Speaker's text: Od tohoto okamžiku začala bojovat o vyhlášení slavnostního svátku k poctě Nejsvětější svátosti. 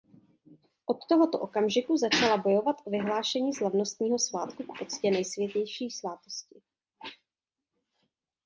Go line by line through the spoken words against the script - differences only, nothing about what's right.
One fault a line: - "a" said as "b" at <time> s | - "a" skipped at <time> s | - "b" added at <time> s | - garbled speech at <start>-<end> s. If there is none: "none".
none